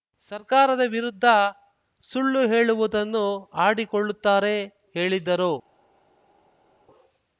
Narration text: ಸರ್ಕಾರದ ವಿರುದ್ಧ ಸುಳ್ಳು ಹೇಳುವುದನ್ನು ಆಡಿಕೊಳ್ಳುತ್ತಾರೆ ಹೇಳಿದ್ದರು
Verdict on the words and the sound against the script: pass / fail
pass